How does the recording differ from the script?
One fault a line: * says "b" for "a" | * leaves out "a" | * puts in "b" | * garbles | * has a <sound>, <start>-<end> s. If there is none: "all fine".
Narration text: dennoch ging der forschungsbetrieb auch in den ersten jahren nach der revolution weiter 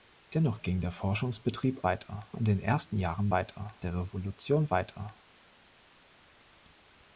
* says "weiter" for "auch"
* says "weiter" for "nach"